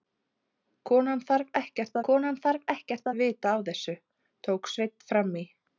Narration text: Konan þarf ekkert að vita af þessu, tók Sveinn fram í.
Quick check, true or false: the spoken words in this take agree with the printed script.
false